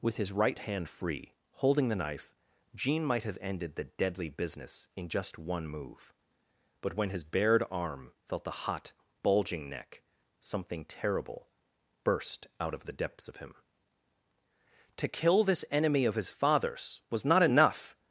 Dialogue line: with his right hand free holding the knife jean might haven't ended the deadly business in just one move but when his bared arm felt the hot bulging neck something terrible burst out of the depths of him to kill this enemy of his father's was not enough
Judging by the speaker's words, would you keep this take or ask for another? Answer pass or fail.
fail